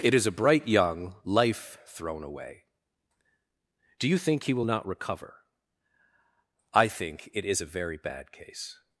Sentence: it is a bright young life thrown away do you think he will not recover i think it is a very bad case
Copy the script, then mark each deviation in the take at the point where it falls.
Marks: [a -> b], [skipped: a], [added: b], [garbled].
it is a bright young life thrown away do you think he will not recover i think it is a very bad case